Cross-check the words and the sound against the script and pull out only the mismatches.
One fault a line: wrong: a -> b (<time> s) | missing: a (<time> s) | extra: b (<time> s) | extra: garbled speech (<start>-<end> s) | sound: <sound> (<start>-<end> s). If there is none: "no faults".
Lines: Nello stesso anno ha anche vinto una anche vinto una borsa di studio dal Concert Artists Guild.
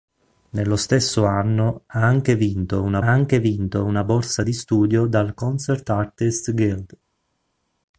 no faults